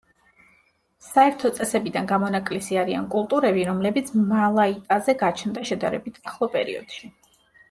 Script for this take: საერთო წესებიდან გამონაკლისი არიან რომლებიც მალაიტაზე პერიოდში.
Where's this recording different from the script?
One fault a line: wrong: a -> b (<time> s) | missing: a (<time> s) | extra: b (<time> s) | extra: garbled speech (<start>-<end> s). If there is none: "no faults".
extra: კულტურები (3.1 s)
extra: გაჩნდა შედარებით ახლო (5.2 s)